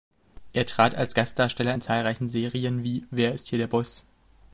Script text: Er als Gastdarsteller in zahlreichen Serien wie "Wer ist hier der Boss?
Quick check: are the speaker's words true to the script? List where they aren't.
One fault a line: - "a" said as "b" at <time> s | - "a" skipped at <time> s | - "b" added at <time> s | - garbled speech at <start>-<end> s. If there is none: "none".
- "trat" added at 0.7 s